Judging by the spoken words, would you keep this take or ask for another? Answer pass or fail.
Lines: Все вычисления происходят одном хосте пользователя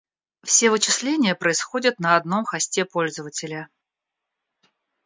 fail